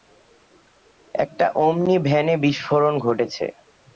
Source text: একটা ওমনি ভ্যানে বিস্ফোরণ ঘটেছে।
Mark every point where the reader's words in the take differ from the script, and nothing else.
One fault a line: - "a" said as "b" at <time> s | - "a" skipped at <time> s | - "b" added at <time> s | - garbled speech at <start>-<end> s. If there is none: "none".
none